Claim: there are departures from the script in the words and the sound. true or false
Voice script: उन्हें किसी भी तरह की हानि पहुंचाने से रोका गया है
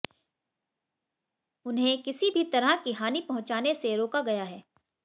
false